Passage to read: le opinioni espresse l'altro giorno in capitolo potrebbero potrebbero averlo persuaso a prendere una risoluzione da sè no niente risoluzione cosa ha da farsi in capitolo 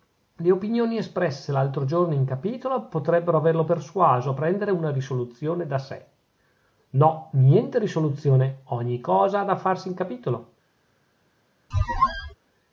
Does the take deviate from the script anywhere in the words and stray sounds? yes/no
yes